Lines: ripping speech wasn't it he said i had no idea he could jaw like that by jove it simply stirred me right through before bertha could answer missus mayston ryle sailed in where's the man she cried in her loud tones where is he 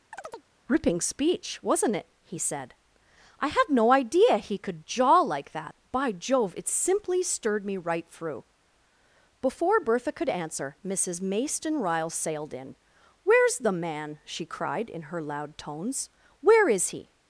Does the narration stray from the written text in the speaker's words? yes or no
no